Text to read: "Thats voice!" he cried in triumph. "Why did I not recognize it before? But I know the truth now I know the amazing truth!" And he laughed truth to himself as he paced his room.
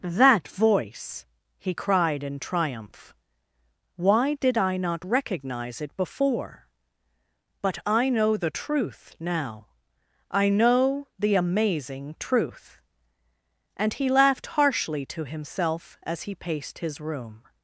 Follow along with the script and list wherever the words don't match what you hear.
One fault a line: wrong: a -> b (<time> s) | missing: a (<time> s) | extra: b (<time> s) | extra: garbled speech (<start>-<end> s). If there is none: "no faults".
wrong: Thats -> That (0.0 s)
wrong: truth -> harshly (14.5 s)